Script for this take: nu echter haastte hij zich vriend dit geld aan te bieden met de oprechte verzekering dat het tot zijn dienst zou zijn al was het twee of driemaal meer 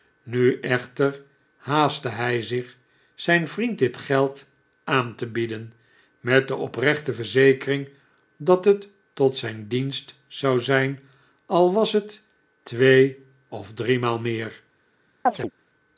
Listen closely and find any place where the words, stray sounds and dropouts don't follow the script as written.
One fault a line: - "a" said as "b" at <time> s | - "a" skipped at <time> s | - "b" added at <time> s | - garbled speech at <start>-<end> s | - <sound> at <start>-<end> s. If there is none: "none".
- "zijn" added at 3.1 s
- chirp at 15.3-15.5 s